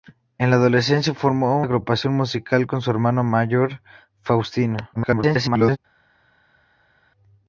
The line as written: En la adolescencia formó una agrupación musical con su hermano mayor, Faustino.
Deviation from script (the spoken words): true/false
true